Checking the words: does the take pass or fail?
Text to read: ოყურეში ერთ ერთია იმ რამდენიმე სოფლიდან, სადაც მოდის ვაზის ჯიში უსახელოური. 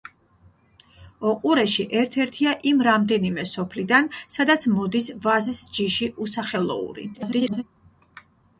fail